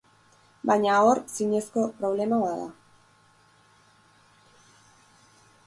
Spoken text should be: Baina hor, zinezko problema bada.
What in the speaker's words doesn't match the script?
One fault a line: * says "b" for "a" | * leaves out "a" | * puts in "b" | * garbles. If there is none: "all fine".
all fine